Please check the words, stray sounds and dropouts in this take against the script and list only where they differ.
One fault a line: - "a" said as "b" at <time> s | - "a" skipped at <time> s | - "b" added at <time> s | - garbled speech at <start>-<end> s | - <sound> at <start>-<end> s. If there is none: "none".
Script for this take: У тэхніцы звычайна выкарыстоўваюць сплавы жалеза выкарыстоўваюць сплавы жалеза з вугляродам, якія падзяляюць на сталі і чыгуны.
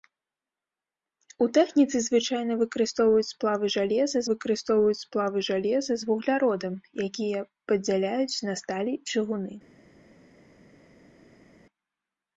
none